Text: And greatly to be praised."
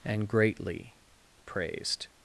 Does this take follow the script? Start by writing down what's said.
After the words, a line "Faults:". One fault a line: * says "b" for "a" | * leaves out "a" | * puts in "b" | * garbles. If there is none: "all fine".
And greatly praised."
Faults:
* leaves out "to be"